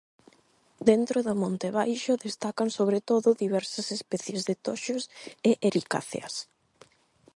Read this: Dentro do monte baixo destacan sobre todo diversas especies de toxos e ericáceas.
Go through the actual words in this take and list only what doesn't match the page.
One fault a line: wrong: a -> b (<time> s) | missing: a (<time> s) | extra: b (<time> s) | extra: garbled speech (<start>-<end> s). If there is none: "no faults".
no faults